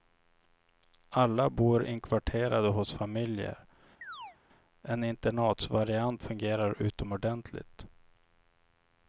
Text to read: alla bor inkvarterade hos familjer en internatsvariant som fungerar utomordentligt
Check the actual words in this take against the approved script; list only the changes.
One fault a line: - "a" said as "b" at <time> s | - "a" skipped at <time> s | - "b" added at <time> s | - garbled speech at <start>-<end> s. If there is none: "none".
- "som" skipped at 6.2 s